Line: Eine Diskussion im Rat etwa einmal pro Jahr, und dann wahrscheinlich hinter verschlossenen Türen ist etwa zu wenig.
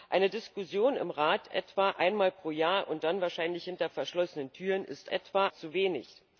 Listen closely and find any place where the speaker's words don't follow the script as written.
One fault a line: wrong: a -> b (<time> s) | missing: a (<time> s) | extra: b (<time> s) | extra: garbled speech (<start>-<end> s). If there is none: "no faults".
no faults